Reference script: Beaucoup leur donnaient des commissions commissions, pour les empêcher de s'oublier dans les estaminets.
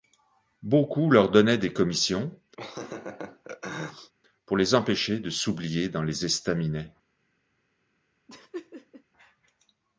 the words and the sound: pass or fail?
fail